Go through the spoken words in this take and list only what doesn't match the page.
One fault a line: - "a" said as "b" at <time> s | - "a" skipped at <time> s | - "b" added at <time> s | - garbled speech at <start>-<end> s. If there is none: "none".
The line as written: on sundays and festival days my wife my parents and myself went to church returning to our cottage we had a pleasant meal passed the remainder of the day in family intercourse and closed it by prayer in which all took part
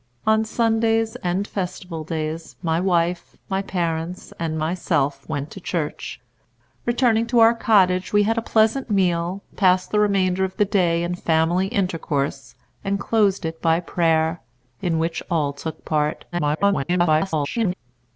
- garbled speech at 16.3-17.7 s